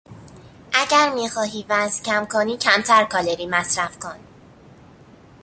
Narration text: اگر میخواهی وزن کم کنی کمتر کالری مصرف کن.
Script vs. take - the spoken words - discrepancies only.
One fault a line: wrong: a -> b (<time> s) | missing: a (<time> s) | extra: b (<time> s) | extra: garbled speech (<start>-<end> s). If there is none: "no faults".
no faults